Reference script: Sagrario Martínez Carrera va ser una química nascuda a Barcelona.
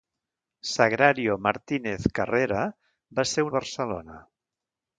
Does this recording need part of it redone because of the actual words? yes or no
yes